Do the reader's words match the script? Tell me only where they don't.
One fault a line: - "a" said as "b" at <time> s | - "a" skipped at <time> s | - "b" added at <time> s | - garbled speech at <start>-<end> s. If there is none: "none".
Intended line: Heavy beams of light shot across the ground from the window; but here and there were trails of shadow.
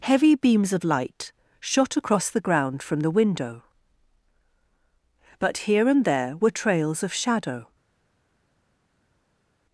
none